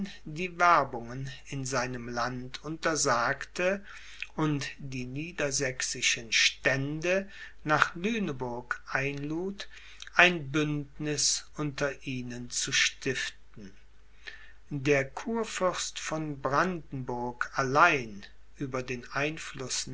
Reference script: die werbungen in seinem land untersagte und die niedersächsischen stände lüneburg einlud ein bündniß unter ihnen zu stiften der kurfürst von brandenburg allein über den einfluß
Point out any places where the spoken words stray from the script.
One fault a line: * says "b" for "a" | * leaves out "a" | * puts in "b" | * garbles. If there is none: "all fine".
* puts in "nach"